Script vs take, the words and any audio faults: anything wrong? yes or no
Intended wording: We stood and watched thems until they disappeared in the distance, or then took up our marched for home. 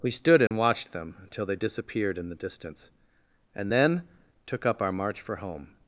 yes